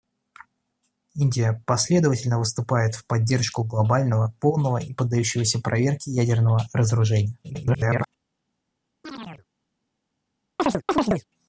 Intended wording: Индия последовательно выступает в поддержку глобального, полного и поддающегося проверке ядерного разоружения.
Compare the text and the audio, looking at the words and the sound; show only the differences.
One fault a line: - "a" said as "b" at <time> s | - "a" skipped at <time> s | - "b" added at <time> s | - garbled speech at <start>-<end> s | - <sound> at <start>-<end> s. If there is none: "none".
- garbled speech at 7.4-8.1 s
- chirp at 9.0-9.5 s
- chirp at 10.6-11.3 s